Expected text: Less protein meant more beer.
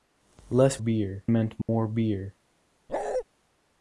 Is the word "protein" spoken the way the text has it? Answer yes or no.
no